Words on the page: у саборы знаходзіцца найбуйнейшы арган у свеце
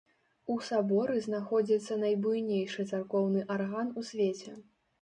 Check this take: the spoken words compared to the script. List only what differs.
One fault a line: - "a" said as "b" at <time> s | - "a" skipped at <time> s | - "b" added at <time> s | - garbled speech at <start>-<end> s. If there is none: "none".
- "царкоўны" added at 2.9 s